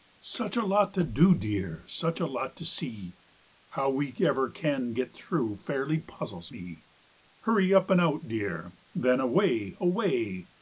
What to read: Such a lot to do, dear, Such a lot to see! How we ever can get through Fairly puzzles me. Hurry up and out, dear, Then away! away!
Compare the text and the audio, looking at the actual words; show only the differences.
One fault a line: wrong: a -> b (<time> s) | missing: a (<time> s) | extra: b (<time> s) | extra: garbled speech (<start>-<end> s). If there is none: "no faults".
no faults